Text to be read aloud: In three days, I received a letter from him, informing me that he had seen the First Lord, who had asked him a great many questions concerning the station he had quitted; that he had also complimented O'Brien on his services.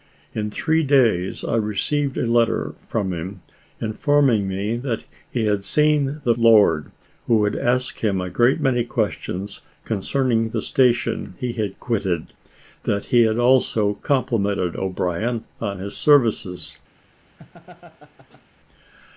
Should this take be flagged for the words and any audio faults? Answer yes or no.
yes